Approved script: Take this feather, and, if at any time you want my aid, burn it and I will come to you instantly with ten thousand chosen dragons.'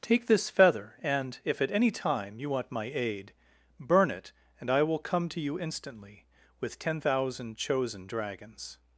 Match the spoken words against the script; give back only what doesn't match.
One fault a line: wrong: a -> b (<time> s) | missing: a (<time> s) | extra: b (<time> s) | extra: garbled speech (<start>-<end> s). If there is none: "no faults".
no faults